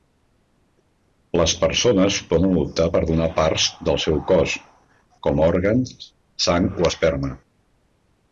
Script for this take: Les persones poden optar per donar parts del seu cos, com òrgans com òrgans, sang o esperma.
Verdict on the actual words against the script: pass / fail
fail